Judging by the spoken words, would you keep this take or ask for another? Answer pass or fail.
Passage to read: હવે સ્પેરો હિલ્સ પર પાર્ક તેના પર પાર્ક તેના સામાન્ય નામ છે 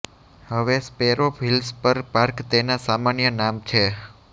fail